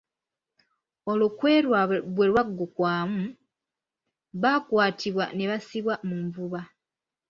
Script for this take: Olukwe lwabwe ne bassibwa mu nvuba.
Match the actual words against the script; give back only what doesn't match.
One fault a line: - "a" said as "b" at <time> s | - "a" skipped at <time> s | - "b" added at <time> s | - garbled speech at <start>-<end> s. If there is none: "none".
- "bwe lwaggukwamu baakwatibwa" added at 2.1 s